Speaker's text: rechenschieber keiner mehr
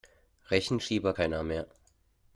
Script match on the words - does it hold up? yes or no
yes